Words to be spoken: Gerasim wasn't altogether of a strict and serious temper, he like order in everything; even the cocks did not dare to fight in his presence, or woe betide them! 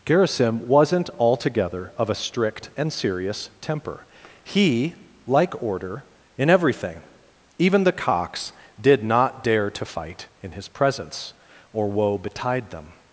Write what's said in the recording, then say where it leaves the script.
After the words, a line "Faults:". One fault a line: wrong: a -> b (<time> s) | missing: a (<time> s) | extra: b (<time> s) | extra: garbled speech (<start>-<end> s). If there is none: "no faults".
Gerasim wasn't altogether of a strict and serious temper, he like order in everything; even the cocks did not dare to fight in his presence, or woe betide them!
Faults:
no faults